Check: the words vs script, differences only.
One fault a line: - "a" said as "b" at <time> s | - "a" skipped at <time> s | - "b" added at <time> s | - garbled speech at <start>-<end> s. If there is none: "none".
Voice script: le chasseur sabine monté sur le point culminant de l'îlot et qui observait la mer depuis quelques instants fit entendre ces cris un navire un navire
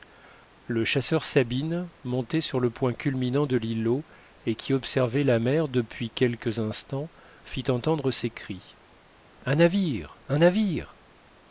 none